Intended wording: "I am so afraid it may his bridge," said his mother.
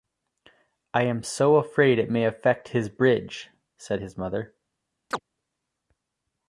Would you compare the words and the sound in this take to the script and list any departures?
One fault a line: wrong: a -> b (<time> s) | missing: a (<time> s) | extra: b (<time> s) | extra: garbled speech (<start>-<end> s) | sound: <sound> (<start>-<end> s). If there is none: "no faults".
extra: affect (2.2 s)
sound: chirp (5.1-5.2 s)